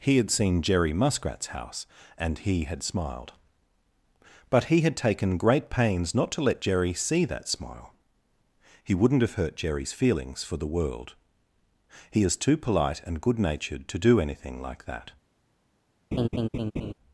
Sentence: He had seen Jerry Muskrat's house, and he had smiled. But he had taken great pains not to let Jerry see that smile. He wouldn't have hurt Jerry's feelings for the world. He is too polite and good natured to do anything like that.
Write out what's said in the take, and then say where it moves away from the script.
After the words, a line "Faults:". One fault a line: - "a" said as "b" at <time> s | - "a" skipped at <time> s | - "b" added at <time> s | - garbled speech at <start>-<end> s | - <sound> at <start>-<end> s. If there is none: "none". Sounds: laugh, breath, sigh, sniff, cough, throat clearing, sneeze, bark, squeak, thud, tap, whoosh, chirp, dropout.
He had seen Jerry Muskrat's house, and he had smiled. But he had taken great pains not to let Jerry see that smile. He wouldn't have hurt Jerry's feelings for the world. He is too polite and good natured to do anything like that.
Faults:
- laugh at 16.1-16.9 s